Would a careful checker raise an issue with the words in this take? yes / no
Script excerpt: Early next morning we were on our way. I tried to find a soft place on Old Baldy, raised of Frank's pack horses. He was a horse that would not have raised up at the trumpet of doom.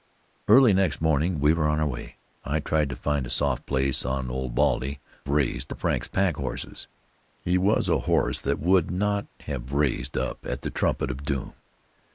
no